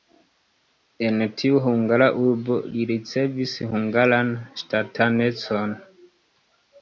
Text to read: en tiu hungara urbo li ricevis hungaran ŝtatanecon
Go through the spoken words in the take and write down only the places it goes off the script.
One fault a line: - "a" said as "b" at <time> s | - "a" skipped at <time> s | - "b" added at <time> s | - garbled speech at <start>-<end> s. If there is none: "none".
none